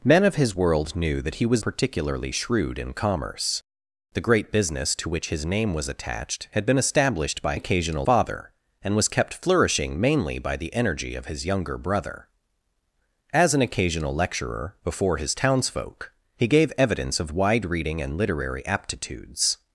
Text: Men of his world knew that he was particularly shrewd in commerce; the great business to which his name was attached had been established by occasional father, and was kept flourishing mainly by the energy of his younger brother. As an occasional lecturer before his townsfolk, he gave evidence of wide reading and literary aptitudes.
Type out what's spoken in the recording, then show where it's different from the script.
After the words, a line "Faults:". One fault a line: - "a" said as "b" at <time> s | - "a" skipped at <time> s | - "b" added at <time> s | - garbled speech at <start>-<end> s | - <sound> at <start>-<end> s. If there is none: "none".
Men of his world knew that he was particularly shrewd in commerce; the great business to which his name was attached had been established by occasional father, and was kept flourishing mainly by the energy of his younger brother. As an occasional lecturer before his townsfolk, he gave evidence of wide reading and literary aptitudes.
Faults:
none